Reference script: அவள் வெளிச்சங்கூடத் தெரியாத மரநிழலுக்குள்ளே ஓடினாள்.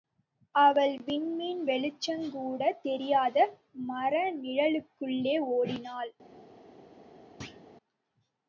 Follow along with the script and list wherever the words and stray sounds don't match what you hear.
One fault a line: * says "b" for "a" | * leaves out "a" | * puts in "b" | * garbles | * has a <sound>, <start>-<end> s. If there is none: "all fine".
* puts in "விண்மீன்"
* has a thud, 7.4-7.6 s